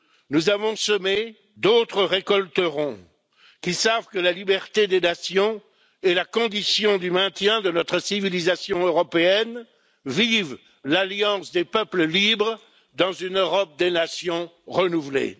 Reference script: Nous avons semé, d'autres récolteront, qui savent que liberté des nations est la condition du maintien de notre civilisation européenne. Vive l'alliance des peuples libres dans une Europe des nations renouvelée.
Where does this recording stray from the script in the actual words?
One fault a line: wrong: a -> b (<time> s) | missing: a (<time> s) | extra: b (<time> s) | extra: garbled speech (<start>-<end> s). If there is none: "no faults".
extra: la (4.2 s)